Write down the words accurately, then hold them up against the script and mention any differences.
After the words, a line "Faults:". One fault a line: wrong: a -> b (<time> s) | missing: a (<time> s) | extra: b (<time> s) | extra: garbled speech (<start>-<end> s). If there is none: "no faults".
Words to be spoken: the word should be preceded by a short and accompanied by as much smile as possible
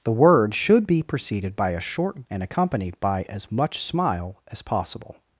the word should be preceded by a short and accompanied by as much smile as possible
Faults:
no faults